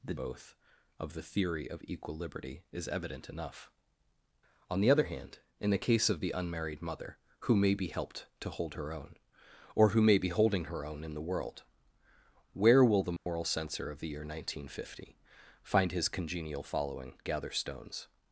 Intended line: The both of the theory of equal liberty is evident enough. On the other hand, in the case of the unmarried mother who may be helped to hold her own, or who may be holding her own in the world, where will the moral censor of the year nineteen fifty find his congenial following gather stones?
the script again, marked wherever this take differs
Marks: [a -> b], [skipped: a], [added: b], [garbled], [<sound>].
The both of the theory of equal liberty is evident enough. On the other hand, in the case of the unmarried mother who may be helped to hold her own, or who may be holding her own in the world, where will the moral [dropout] censor of the year nineteen fifty find his congenial following gather stones?